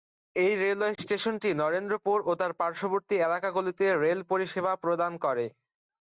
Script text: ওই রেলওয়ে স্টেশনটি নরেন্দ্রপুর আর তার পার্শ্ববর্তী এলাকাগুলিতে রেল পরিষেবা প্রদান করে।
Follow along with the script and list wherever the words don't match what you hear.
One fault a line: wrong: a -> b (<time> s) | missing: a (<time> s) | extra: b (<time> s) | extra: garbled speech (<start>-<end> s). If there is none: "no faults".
wrong: ওই -> এই (0.3 s)
wrong: আর -> ও (2.2 s)